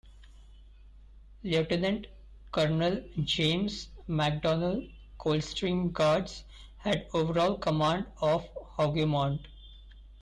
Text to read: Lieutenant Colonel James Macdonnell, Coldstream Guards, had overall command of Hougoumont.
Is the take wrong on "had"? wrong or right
right